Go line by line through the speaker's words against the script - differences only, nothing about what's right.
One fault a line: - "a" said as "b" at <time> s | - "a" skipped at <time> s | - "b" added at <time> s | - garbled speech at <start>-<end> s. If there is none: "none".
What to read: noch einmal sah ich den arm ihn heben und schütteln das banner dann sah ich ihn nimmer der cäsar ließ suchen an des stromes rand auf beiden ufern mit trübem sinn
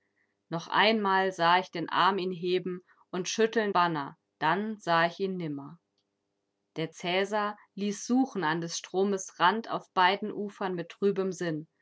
- "das" skipped at 3.7 s